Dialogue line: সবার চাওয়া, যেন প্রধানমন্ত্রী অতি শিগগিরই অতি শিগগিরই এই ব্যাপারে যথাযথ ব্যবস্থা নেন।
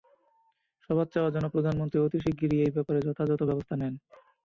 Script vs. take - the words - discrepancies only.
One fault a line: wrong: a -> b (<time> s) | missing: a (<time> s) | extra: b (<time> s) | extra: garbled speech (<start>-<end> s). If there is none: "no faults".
missing: অতি শিগগিরই (2.6 s)